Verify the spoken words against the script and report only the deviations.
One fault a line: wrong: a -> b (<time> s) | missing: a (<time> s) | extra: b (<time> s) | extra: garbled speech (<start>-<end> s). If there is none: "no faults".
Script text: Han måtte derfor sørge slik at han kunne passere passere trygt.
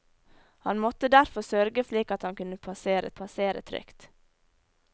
no faults